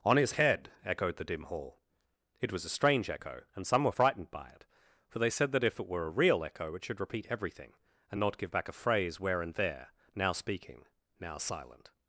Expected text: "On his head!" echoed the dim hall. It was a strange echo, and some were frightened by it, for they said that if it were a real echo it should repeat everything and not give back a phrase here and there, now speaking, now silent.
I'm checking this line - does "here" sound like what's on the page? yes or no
no